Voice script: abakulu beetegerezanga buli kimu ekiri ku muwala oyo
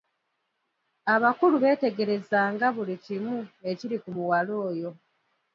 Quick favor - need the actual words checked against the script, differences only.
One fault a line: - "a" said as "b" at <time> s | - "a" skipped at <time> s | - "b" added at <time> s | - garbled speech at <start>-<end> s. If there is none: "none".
none